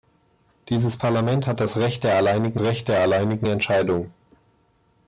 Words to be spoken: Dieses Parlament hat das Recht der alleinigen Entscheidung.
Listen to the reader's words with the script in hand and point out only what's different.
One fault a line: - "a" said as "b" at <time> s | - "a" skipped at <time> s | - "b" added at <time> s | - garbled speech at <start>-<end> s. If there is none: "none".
- "Recht der alleinigen" added at 2.6 s